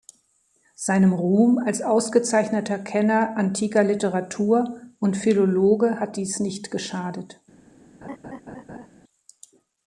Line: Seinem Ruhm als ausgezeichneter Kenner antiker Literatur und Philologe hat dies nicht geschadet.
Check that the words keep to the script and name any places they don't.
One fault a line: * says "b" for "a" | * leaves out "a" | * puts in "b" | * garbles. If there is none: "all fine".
all fine